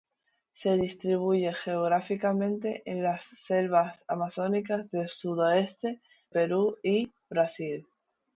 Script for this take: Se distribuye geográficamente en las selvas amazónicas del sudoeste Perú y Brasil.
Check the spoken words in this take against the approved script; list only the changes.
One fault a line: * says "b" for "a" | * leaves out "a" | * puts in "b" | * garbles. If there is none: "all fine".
all fine